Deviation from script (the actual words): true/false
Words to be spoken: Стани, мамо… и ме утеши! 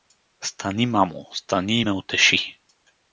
true